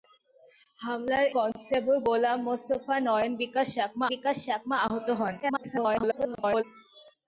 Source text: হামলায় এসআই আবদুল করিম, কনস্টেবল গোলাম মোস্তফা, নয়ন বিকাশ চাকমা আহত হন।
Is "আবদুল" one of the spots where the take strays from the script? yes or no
yes